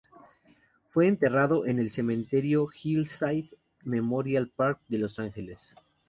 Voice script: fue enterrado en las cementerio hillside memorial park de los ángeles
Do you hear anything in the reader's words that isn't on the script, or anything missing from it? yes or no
yes